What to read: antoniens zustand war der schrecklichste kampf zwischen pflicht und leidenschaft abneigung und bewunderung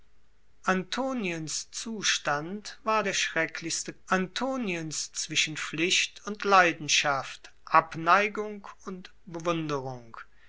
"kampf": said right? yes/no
no